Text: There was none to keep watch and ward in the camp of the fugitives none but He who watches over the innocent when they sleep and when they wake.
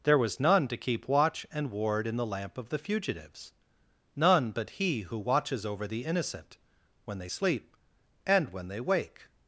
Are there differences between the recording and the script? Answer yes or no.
yes